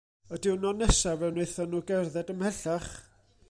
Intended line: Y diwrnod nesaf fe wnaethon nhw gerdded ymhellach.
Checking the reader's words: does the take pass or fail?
pass